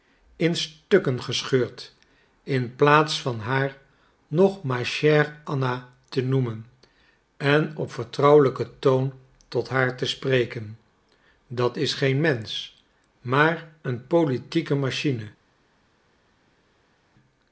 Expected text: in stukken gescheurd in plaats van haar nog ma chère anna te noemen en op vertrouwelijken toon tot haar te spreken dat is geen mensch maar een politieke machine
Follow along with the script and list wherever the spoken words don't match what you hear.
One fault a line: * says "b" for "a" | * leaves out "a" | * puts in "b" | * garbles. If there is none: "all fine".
all fine